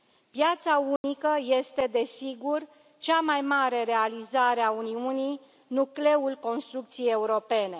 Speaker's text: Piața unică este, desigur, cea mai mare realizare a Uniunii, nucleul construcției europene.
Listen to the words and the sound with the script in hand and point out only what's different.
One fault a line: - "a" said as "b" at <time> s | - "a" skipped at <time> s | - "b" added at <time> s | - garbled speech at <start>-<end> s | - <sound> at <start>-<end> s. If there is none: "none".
- dropout at 1.0-1.0 s